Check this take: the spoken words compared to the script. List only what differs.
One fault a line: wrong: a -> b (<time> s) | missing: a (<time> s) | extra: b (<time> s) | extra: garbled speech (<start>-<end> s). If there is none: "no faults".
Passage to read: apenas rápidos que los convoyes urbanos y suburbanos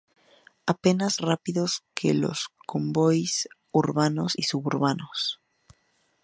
no faults